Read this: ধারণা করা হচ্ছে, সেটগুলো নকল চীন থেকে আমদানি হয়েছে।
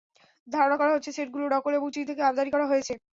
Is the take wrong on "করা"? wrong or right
right